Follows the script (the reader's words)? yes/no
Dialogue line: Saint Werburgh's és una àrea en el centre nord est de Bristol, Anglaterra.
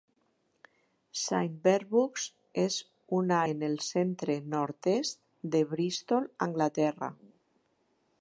no